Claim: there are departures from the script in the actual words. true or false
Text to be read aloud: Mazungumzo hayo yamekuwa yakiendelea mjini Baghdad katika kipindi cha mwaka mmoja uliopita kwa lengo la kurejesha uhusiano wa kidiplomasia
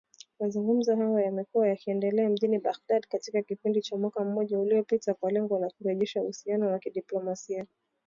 false